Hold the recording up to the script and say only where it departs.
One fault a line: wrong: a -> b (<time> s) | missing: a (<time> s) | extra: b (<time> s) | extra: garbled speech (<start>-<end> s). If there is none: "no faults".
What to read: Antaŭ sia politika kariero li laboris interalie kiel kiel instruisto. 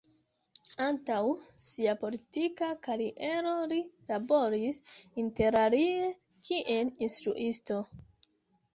missing: kiel (7.0 s)